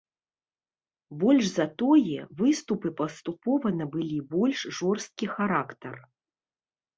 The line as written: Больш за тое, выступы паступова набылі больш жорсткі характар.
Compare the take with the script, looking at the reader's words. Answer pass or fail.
pass